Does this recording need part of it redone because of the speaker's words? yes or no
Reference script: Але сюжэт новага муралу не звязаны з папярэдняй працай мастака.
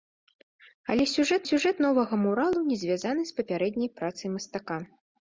yes